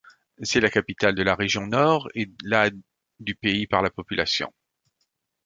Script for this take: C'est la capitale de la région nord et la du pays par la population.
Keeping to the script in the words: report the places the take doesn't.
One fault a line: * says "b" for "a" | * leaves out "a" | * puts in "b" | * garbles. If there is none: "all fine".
all fine